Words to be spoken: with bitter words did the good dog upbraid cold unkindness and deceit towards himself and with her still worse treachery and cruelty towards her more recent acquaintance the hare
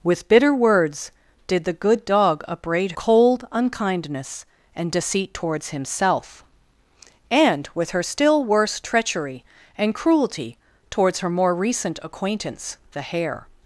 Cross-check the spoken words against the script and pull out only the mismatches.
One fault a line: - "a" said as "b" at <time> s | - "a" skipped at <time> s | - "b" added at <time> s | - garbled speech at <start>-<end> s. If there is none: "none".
none